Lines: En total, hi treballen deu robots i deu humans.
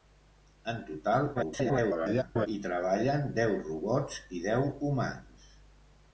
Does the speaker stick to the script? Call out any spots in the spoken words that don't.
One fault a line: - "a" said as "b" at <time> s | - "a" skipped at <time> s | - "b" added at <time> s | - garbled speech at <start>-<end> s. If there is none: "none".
- garbled speech at 1.3-2.5 s